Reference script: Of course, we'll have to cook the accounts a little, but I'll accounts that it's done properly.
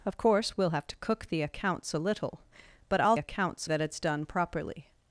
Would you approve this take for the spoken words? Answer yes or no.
yes